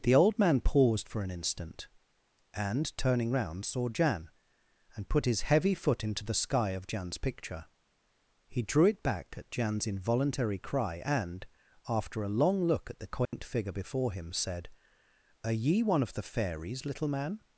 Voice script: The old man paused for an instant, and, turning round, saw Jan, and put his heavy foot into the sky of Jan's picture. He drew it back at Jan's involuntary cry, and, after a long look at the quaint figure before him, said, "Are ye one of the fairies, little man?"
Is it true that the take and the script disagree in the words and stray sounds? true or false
true